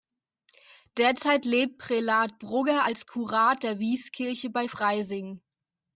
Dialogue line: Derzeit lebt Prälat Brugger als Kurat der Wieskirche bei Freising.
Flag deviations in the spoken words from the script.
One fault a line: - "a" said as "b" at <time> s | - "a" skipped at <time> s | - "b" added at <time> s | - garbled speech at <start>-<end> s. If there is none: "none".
none